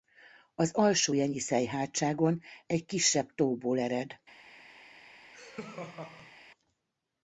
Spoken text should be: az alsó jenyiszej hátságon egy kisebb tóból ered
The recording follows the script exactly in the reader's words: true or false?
true